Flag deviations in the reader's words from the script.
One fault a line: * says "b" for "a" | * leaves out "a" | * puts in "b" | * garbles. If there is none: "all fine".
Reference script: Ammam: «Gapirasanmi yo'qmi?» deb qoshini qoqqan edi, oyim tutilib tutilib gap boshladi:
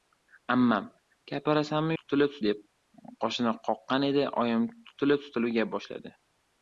* says "tutilib" for "yo'qmi"